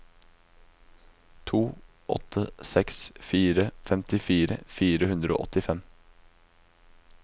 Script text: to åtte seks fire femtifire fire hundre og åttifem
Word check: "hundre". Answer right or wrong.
right